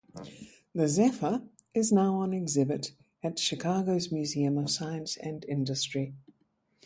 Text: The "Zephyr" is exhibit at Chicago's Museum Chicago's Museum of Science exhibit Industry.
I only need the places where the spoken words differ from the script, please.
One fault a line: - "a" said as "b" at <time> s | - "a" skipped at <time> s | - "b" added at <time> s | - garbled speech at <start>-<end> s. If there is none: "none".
- "now on" added at 1.9 s
- "Chicago's Museum" skipped at 4.6 s
- "exhibit" said as "and" at 5.2 s